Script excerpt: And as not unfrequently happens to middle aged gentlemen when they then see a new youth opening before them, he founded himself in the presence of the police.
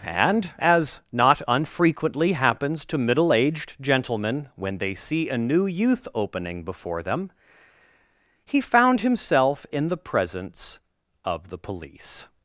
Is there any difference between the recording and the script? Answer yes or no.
yes